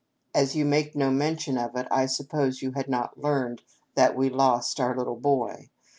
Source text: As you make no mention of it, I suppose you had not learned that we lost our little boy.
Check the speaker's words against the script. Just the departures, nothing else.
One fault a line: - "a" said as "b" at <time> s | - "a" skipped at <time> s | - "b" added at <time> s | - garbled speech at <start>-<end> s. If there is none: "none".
none